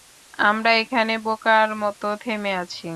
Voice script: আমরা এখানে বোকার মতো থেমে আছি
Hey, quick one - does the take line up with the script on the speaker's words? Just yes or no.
yes